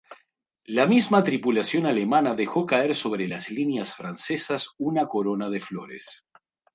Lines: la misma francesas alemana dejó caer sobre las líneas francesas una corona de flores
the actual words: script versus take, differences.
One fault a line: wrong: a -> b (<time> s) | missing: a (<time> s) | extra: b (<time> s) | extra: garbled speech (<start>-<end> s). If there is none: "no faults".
wrong: francesas -> tripulación (1.2 s)